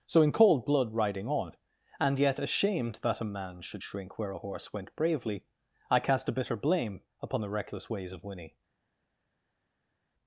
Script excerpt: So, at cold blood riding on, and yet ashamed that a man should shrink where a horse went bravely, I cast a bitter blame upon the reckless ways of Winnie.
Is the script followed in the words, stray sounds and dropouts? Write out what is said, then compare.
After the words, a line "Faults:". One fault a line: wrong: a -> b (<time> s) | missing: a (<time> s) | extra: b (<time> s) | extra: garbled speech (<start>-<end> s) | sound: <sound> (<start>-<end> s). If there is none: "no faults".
So, in cold blood riding on, and yet ashamed that a man should shrink where a horse went bravely, I cast a bitter blame upon the reckless ways of Winnie.
Faults:
wrong: at -> in (0.2 s)